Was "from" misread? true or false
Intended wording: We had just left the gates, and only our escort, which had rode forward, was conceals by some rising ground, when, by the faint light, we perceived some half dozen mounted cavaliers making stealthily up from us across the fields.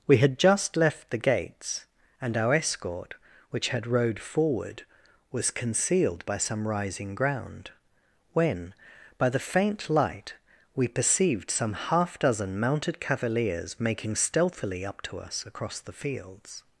true